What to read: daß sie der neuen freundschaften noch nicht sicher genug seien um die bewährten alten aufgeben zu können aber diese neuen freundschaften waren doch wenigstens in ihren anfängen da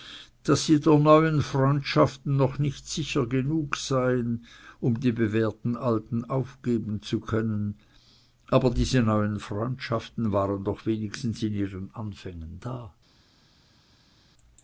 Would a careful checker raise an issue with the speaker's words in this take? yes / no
no